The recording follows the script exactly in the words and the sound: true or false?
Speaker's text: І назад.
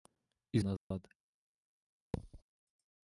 false